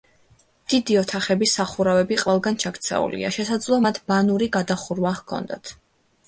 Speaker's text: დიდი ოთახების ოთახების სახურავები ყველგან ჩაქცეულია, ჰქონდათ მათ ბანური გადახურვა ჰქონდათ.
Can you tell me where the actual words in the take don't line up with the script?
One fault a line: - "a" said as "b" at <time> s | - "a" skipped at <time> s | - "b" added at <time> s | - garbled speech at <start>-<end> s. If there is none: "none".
- "ოთახების" skipped at 1.5 s
- "ჰქონდათ" said as "შესაძლოა" at 3.4 s